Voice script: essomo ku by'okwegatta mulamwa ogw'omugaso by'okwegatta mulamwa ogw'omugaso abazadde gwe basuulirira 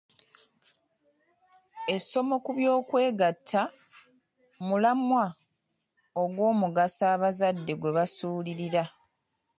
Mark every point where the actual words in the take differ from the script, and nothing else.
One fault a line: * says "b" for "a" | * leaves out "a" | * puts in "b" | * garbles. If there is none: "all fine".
* leaves out "by'okwegatta mulamwa ogw'omugaso"